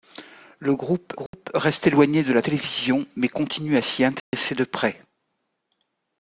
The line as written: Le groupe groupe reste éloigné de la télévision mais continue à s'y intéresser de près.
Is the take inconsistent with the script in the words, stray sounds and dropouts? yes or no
yes